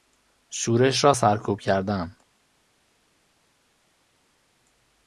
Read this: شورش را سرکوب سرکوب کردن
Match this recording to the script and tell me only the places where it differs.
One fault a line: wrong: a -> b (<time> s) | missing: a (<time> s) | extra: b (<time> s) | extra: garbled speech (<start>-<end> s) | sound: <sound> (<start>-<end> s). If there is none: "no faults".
missing: سرکوب (1.6 s)